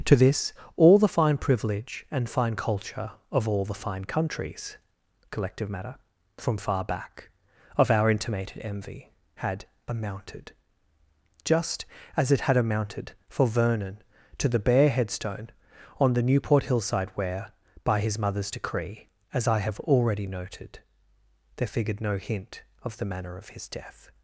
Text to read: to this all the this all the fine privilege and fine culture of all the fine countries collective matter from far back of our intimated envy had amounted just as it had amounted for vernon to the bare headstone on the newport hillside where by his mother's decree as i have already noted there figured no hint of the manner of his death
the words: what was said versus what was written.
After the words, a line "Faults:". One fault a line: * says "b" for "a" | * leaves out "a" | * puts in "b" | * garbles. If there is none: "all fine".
to this all the fine privilege and fine culture of all the fine countries collective matter from far back of our intimated envy had amounted just as it had amounted for vernon to the bare headstone on the newport hillside where by his mother's decree as i have already noted there figured no hint of the manner of his death
Faults:
* leaves out "this all the"